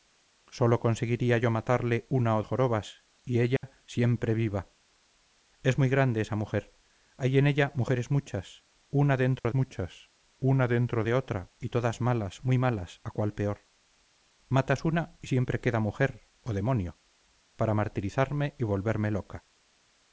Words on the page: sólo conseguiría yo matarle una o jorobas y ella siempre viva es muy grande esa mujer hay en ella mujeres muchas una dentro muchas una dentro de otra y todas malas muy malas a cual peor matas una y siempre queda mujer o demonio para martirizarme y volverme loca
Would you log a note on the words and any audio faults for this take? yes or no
yes